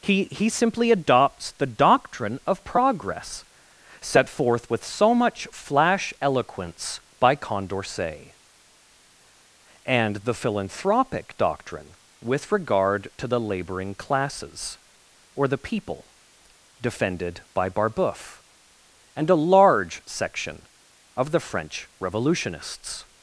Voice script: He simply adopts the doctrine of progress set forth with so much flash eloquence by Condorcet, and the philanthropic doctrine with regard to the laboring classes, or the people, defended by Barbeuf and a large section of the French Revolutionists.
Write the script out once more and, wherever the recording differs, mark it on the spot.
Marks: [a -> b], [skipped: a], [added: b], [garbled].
He [added: he] simply adopts the doctrine of progress set forth with so much flash eloquence by Condorcet, and the philanthropic doctrine with regard to the laboring classes, or the people, defended by Barbeuf and a large section of the French Revolutionists.